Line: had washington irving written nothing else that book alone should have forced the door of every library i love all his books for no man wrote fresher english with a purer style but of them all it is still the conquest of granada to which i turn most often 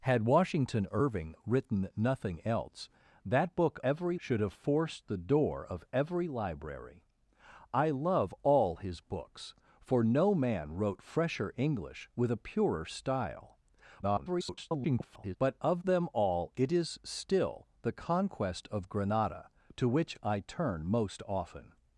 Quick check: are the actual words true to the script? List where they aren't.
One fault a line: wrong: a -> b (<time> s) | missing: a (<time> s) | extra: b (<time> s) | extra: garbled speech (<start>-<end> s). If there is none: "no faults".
wrong: alone -> every (3.8 s)
extra: garbled speech (14.0-15.4 s)